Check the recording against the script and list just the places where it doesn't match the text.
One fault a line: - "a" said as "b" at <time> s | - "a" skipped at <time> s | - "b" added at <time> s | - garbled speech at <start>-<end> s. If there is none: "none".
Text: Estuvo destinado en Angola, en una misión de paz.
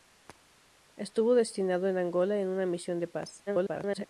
- garbled speech at 3.5-4.1 s